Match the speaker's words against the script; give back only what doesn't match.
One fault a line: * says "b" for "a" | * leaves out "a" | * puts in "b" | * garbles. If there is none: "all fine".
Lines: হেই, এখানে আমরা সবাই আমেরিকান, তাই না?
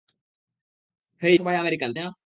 * leaves out "এখানে আমরা"
* leaves out "তাই"